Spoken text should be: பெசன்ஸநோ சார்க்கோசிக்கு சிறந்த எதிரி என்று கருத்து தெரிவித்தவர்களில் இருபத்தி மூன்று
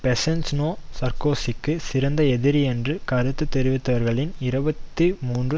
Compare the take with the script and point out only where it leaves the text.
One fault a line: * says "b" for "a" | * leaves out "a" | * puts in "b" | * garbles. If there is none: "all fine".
all fine